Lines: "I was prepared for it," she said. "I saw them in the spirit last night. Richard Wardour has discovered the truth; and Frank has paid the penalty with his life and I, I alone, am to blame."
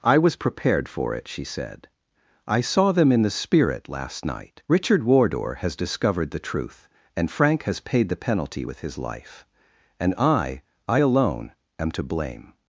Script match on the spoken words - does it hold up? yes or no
yes